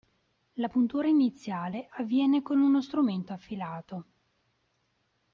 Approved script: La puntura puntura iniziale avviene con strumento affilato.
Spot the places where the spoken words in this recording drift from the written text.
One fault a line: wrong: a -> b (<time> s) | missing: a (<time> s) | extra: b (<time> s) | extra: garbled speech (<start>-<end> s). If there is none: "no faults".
missing: puntura (1.1 s)
extra: uno (2.6 s)